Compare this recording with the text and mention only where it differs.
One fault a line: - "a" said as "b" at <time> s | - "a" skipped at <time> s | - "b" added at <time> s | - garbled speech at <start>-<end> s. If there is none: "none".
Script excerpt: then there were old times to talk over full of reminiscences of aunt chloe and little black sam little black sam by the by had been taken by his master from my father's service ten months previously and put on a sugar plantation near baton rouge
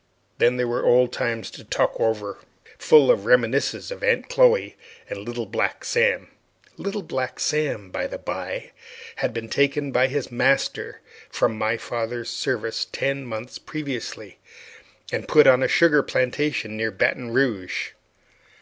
none